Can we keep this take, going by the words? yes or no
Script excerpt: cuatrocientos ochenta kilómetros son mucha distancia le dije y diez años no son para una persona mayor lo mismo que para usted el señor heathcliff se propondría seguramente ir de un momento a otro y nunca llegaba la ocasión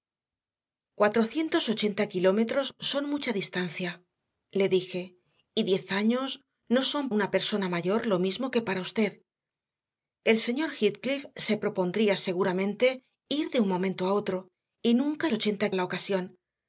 no